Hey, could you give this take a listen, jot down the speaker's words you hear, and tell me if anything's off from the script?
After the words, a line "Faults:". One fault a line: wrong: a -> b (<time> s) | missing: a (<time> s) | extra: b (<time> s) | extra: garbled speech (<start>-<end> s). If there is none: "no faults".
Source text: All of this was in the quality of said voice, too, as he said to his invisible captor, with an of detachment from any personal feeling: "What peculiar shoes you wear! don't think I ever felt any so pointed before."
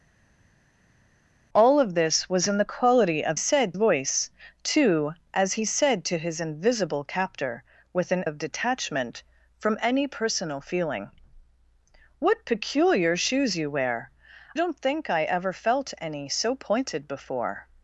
All of this was in the quality of said voice, too, as he said to his invisible captor, with an of detachment from any personal feeling: "What peculiar shoes you wear! don't think I ever felt any so pointed before."
Faults:
no faults